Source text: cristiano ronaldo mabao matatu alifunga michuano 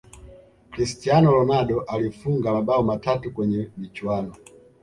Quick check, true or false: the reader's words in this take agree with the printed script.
false